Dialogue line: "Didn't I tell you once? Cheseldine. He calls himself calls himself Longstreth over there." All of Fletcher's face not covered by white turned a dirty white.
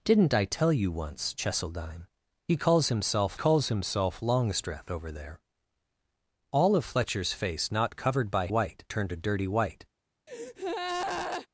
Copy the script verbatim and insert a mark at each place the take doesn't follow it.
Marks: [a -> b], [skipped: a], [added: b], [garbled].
"Didn't I tell you once? Cheseldine. He calls himself calls himself Longstreth over there." All of Fletcher's face not covered by white turned a dirty white.